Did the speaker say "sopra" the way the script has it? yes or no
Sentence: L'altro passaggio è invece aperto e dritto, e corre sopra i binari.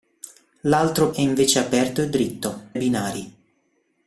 no